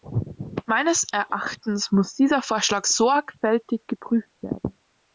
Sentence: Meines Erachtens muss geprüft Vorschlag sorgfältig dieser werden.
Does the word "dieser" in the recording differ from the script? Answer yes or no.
yes